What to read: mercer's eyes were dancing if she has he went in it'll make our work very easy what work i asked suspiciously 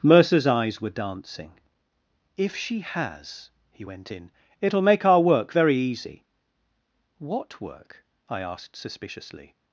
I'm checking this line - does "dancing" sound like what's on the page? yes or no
yes